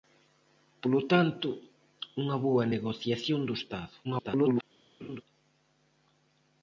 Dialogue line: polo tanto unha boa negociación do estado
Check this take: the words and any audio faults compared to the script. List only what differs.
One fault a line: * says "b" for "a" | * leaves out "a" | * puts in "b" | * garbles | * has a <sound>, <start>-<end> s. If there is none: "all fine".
* garbles
* has a laugh, 5.0-5.2 s